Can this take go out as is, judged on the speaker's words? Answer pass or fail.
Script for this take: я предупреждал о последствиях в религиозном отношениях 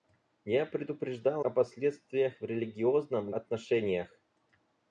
pass